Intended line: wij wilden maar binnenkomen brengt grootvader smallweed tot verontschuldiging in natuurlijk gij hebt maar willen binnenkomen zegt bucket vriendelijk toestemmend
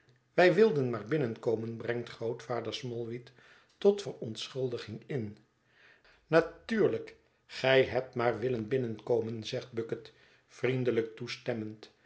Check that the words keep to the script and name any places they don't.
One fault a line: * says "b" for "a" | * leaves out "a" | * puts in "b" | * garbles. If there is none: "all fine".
all fine